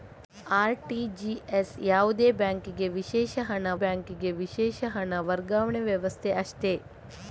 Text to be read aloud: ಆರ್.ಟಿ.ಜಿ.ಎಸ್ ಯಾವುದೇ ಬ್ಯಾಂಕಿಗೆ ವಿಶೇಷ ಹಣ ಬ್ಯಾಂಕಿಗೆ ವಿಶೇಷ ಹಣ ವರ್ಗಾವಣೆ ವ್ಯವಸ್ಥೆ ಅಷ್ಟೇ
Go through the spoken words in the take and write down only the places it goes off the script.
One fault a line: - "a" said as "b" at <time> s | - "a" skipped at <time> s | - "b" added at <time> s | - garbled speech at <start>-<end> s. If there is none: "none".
none